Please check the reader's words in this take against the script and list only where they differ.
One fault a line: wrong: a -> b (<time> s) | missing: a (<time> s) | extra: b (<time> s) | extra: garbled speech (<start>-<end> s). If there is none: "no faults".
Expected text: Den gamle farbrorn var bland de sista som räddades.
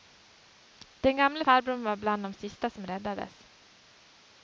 no faults